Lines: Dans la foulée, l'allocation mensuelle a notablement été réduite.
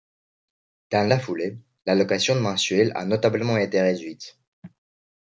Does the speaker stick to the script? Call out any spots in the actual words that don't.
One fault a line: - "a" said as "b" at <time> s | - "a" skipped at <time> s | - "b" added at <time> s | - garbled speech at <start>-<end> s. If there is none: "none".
none